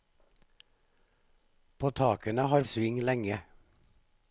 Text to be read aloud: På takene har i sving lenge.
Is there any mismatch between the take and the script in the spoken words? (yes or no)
no